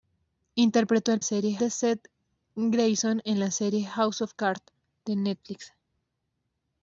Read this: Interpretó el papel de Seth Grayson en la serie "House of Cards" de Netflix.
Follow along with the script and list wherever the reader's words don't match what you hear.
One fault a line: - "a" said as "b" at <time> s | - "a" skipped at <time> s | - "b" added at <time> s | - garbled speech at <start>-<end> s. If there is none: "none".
- "papel" said as "serie" at 1.2 s